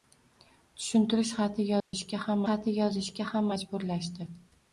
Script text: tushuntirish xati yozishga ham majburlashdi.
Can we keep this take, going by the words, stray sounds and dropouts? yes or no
no